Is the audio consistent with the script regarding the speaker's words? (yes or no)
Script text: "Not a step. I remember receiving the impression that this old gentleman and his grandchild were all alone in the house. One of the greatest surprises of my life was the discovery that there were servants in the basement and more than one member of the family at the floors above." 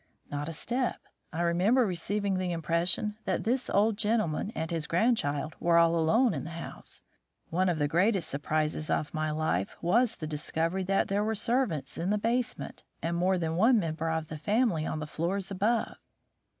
no